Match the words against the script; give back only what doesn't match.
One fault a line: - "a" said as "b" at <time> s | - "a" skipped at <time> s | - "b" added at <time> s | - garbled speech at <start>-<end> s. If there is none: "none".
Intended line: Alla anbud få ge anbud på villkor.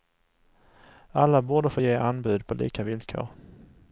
- "anbud" said as "borde" at 1.4 s
- "lika" added at 2.5 s